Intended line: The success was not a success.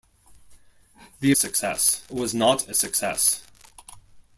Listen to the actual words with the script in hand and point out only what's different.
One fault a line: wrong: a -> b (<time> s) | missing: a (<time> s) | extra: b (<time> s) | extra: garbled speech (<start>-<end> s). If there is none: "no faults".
no faults